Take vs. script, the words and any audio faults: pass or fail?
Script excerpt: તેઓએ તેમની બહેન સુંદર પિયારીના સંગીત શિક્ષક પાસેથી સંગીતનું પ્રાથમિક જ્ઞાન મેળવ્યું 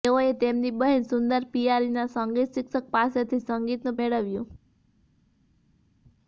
fail